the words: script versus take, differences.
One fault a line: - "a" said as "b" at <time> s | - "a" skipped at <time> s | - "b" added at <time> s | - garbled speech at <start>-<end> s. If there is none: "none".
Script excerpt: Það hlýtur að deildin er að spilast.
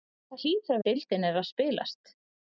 none